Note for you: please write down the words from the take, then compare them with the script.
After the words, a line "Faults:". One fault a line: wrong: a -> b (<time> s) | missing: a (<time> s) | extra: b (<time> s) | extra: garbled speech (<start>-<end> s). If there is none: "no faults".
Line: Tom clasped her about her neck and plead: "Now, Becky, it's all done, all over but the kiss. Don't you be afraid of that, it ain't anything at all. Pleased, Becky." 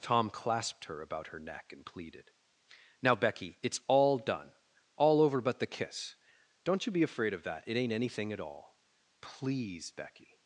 Tom clasped her about her neck and pleaded: "Now, Becky, it's all done, all over but the kiss. Don't you be afraid of that, it ain't anything at all. Please, Becky."
Faults:
wrong: plead -> pleaded (1.8 s)
wrong: Pleased -> Please (9.2 s)